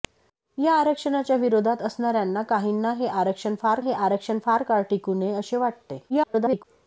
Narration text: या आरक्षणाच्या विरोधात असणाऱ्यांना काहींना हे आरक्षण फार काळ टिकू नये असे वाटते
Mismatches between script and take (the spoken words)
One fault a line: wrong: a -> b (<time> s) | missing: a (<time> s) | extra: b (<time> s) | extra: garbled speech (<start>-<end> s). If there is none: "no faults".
extra: हे आरक्षण फार (3.8 s)
extra: garbled speech (6.1-6.6 s)